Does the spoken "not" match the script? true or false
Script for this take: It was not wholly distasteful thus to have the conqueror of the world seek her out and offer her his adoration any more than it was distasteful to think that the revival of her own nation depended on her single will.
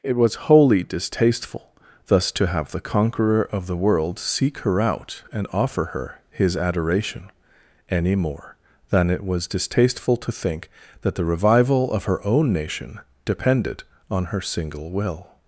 false